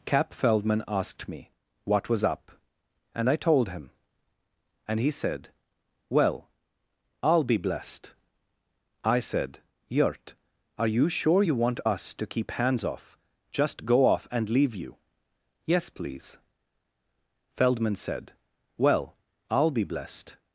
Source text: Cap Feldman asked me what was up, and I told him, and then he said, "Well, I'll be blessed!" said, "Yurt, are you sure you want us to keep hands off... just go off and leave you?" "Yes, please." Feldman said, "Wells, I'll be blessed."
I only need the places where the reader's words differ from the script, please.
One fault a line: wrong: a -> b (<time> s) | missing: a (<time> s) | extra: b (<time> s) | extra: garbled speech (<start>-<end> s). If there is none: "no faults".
missing: then (5.0 s)
extra: I (9.0 s)
wrong: Wells -> Well (18.8 s)